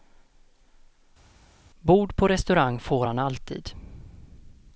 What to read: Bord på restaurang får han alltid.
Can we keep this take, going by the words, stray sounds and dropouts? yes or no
yes